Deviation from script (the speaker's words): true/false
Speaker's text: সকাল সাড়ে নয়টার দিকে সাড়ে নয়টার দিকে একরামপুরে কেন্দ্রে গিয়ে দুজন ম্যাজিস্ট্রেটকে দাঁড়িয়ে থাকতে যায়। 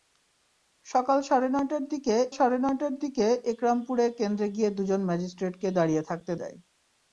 false